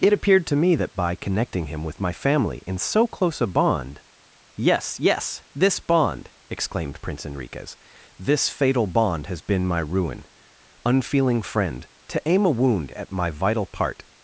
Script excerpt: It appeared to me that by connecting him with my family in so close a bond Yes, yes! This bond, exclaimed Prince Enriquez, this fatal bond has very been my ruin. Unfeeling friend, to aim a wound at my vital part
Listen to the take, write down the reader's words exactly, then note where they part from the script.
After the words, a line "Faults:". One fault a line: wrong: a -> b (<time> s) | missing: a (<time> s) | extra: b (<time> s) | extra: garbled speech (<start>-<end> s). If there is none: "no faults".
It appeared to me that by connecting him with my family in so close a bond Yes, yes! This bond, exclaimed Prince Enriquez, this fatal bond has been my ruin. Unfeeling friend, to aim a wound at my vital part
Faults:
missing: very (9.4 s)